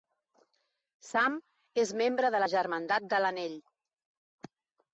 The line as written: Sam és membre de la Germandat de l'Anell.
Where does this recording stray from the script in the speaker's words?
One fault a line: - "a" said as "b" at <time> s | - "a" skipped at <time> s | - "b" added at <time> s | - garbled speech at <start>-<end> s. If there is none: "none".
none